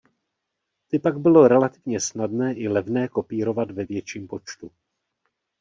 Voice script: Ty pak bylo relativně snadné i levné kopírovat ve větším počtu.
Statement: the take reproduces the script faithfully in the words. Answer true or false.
true